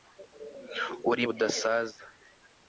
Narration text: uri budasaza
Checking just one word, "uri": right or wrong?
right